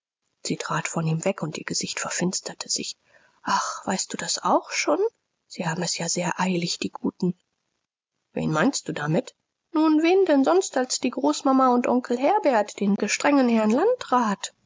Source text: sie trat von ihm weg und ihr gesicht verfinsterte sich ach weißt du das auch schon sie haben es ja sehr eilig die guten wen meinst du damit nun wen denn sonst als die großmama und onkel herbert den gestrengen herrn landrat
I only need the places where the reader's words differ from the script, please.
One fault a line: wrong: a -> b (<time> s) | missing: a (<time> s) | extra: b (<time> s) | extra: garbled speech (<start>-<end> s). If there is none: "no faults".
no faults